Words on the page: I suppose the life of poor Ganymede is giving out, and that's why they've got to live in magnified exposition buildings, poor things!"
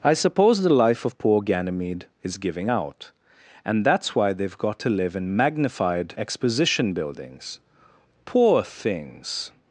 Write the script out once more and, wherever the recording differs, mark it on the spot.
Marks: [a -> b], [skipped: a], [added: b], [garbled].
I suppose the life of poor Ganymede is giving out, and that's why they've got to live in magnified exposition buildings, poor things!"